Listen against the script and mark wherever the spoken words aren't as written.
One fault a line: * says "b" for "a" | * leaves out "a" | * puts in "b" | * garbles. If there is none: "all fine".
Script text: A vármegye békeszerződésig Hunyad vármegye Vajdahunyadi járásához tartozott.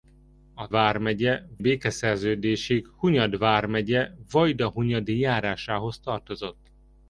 all fine